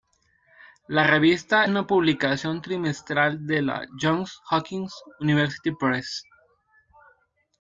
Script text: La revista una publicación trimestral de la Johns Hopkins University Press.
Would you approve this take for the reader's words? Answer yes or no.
yes